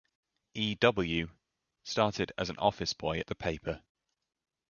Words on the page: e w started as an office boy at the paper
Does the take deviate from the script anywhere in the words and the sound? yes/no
no